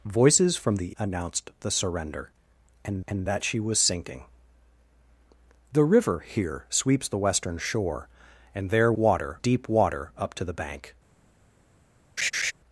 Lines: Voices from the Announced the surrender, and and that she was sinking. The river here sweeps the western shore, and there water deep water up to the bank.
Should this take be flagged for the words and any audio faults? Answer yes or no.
yes